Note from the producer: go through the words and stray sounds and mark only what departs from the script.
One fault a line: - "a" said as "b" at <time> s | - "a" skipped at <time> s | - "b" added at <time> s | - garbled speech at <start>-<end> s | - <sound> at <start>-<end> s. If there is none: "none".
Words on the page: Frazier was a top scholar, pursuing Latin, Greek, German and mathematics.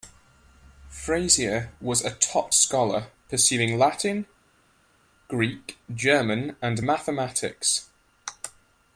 none